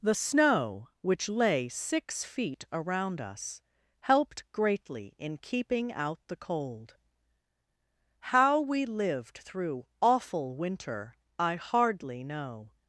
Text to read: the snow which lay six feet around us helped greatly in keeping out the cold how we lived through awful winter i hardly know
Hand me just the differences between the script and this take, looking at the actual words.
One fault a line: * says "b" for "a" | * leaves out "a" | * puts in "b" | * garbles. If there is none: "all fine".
all fine